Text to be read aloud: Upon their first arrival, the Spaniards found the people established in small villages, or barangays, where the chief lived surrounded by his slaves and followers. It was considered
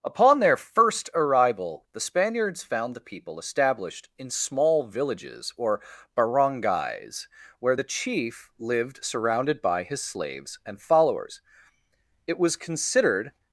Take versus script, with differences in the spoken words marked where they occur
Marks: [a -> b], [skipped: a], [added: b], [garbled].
Upon their first arrival, the Spaniards found the people established in small villages, or barangays, where the chief lived surrounded by his slaves and followers. It was considered